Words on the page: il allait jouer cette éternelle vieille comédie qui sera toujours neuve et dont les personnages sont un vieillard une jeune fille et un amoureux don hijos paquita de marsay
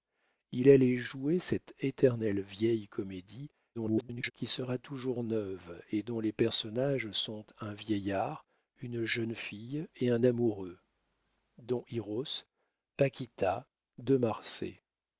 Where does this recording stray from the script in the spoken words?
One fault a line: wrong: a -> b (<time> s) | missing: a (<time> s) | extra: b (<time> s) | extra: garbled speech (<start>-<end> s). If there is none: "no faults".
extra: garbled speech (3.7-4.3 s)